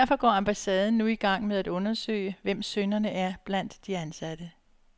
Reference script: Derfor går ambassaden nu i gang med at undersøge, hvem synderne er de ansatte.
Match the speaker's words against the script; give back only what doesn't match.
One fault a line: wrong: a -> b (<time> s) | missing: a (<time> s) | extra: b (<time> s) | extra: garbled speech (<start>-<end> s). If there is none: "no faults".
extra: blandt (3.5 s)